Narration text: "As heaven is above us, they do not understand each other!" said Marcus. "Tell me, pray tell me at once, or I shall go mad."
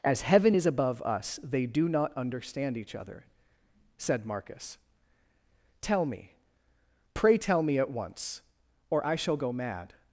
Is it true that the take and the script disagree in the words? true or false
false